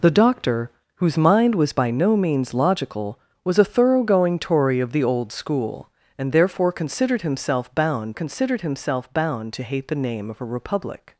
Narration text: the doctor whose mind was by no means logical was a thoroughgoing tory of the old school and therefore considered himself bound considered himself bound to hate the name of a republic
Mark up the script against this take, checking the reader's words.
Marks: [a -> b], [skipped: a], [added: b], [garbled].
the doctor whose mind was by no means logical was a thoroughgoing tory of the old school and therefore considered himself bound considered himself bound to hate the name of a republic